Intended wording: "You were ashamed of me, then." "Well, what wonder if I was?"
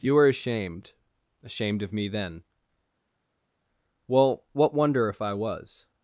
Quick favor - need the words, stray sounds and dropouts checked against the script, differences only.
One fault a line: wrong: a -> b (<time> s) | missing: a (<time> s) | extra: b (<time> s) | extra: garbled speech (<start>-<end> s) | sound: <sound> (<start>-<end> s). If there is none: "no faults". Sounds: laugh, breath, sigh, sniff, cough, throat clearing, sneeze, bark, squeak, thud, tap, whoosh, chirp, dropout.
extra: ashamed (1.4 s)